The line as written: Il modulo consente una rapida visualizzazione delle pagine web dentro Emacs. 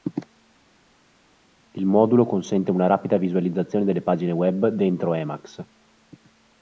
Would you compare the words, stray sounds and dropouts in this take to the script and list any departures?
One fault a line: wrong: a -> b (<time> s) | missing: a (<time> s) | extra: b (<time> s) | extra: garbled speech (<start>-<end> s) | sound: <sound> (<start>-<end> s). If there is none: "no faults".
no faults